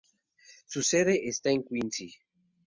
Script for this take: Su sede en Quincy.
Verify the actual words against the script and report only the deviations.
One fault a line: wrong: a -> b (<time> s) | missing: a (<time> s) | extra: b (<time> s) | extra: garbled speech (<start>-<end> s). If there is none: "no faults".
extra: está (1.3 s)